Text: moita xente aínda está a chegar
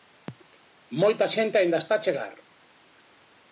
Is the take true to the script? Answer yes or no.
yes